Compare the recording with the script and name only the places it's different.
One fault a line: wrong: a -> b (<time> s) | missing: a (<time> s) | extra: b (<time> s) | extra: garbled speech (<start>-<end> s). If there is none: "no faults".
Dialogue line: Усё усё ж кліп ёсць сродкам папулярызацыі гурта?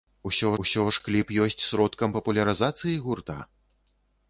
no faults